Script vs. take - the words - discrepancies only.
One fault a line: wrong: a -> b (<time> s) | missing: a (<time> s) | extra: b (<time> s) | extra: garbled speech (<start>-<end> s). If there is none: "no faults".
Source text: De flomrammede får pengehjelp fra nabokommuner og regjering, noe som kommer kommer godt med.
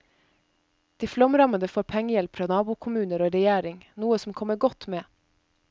missing: kommer (4.6 s)